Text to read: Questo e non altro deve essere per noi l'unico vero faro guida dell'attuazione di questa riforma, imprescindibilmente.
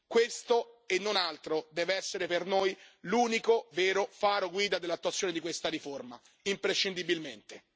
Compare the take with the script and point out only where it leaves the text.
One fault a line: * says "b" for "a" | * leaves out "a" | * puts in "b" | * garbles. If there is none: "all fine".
all fine